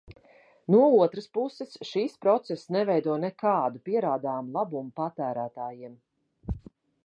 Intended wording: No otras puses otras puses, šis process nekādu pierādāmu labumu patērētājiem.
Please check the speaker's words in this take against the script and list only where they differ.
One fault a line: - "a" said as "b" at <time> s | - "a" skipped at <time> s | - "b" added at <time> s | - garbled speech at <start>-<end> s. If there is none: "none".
- "otras puses" skipped at 1.8 s
- "neveido" added at 2.8 s